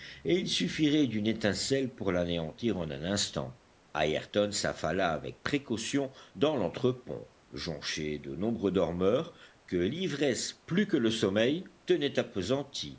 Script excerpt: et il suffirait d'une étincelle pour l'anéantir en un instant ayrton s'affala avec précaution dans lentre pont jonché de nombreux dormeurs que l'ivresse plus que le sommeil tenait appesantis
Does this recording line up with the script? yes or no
yes